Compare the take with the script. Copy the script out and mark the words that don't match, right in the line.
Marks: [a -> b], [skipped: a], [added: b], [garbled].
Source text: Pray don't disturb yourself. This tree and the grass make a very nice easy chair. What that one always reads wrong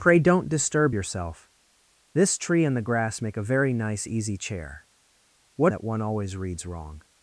Pray don't disturb yourself. This tree and the grass make a very nice easy chair. What that one always reads wrong